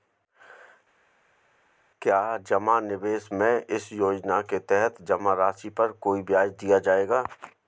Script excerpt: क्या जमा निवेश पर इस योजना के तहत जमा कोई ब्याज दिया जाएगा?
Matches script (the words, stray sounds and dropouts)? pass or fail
fail